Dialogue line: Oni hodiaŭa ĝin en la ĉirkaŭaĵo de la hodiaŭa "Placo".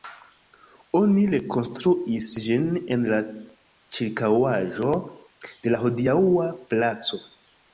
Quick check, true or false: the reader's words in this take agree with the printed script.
false